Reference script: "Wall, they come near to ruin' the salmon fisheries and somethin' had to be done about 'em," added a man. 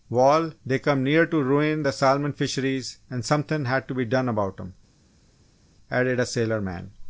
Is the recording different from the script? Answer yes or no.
yes